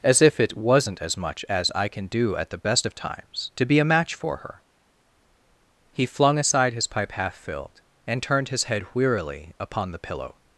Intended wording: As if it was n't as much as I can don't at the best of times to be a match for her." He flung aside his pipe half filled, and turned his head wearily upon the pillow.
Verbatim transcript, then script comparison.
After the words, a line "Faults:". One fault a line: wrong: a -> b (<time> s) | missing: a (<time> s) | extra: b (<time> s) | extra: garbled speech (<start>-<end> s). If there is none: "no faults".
As if it was n't as much as I can do at the best of times to be a match for her." He flung aside his pipe half filled, and turned his head wearily upon the pillow.
Faults:
wrong: don't -> do (2.1 s)